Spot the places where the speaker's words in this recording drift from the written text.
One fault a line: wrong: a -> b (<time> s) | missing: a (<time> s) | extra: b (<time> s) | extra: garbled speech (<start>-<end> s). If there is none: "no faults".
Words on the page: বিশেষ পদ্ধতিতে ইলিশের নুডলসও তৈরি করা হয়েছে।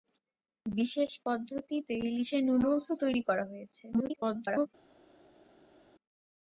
extra: garbled speech (3.9-4.7 s)